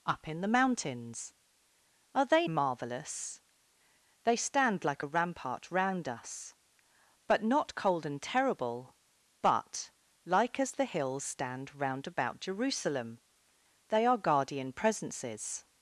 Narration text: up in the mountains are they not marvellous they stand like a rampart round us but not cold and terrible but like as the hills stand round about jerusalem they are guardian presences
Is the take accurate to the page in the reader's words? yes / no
no